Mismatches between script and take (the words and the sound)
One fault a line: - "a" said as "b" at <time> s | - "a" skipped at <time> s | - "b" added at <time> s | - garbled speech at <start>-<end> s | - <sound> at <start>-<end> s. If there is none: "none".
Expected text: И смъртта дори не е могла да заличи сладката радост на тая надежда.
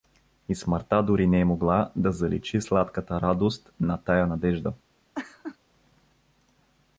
- laugh at 5.1-5.6 s